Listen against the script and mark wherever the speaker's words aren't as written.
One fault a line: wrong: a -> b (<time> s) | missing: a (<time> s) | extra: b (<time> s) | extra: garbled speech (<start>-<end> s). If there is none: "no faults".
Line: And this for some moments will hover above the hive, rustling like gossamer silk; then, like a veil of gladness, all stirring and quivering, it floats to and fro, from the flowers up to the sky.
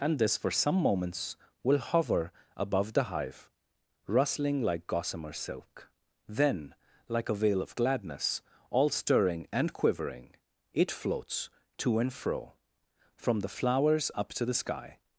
no faults